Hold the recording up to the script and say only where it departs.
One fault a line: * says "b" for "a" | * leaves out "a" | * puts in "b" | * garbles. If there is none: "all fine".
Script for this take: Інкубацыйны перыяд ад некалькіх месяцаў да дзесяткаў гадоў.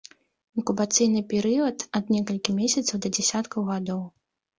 all fine